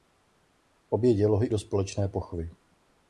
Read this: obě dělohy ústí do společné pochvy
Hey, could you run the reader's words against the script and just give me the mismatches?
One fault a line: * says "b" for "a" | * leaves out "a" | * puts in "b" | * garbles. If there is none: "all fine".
* leaves out "ústí"